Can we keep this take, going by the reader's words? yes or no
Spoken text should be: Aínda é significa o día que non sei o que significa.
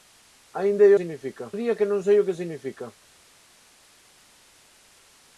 yes